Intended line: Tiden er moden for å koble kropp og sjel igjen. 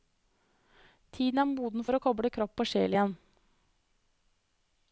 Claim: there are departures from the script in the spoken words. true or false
false